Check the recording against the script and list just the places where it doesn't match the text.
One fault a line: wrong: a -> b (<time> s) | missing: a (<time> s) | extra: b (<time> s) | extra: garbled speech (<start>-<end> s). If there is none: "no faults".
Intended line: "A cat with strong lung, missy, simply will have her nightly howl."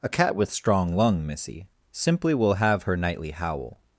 no faults